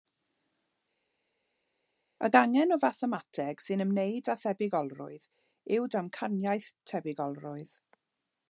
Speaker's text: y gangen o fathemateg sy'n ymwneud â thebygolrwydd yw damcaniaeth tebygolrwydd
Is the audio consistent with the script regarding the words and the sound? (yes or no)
yes